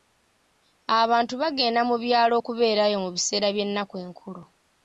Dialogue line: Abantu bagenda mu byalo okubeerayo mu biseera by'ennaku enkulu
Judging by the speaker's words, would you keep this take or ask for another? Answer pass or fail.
pass